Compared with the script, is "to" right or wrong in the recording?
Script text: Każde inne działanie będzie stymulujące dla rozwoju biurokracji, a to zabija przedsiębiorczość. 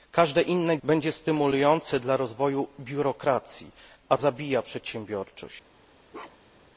wrong